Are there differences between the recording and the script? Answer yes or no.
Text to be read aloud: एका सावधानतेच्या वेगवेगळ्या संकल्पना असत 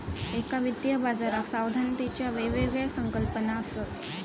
yes